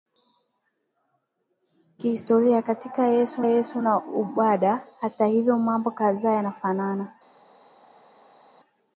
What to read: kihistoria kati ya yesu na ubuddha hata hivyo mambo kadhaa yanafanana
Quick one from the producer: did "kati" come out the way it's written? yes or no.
yes